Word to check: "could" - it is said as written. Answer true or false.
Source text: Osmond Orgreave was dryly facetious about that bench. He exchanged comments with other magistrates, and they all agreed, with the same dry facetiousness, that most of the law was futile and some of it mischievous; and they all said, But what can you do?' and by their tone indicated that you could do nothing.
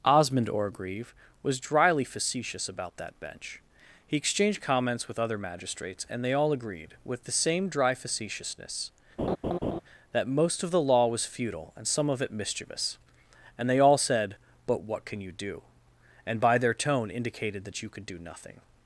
true